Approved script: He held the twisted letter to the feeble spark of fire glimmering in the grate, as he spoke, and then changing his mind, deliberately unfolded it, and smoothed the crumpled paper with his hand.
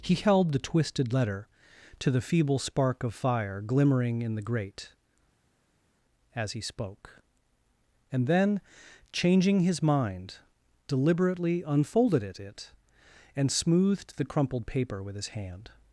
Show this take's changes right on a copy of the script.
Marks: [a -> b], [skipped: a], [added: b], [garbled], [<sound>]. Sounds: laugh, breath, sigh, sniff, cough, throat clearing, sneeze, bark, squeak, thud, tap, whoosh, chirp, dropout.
He held the twisted letter to the feeble spark of fire glimmering in the grate, as he spoke, and then changing his mind, deliberately unfolded it, [added: it] and smoothed the crumpled paper with his hand.